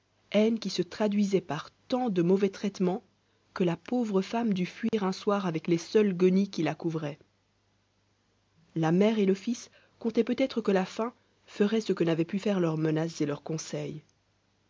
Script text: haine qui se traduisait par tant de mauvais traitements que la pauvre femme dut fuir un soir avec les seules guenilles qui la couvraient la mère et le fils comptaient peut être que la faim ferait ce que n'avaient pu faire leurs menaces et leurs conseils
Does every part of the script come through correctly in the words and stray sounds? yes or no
no